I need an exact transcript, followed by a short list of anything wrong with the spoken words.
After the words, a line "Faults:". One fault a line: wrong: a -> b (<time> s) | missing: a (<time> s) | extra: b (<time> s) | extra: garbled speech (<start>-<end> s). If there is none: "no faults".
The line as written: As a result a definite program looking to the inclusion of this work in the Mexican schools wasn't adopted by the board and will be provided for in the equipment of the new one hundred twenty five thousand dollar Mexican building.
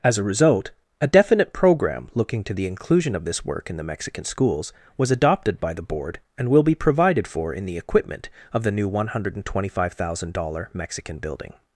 As a result a definite program looking to the inclusion of this work in the Mexican schools was adopted by the board and will be provided for in the equipment of the new one hundred twenty five thousand dollar Mexican building.
Faults:
wrong: wasn't -> was (5.0 s)